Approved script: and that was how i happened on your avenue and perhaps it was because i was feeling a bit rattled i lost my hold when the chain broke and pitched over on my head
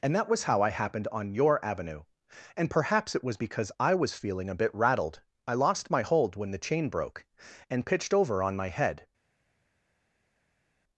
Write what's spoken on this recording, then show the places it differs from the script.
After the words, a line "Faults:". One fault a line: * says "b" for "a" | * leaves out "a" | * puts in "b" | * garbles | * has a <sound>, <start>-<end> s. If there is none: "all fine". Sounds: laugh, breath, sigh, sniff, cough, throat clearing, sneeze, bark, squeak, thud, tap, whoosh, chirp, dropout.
and that was how i happened on your avenue and perhaps it was because i was feeling a bit rattled i lost my hold when the chain broke and pitched over on my head
Faults:
all fine